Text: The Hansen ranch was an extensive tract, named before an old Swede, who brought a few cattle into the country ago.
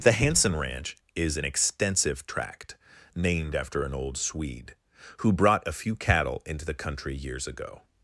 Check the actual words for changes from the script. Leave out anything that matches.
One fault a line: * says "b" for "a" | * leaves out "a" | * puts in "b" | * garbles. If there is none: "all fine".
* says "is" for "was"
* says "after" for "before"
* puts in "years"